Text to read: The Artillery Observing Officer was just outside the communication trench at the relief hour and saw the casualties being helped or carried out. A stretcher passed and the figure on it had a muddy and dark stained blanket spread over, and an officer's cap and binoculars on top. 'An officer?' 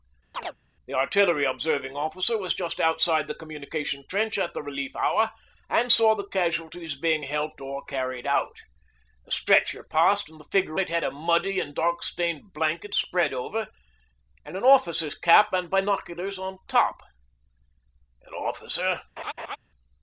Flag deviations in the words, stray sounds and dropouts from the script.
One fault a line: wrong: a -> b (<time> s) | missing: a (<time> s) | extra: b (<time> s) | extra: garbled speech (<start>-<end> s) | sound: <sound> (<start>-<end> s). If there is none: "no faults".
sound: chirp (0.3-0.6 s)
missing: on (10.8 s)
sound: laugh (19.2-19.6 s)